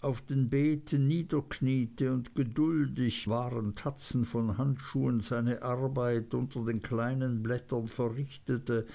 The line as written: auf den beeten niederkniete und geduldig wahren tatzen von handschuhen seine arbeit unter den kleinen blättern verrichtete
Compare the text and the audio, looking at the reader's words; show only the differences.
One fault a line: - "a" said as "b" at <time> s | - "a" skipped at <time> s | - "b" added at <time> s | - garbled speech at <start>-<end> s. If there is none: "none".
none